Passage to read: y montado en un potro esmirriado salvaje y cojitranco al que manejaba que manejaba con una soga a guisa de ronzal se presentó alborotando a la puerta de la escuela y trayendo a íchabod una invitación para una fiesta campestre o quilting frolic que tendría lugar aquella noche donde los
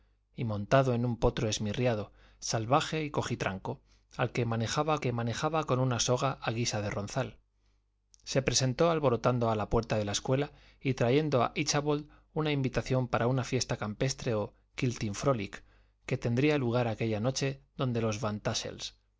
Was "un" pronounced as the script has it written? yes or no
yes